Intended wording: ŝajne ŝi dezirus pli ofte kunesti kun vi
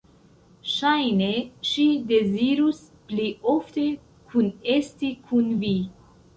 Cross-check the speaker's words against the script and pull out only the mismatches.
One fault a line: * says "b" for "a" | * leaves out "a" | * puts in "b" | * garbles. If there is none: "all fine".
all fine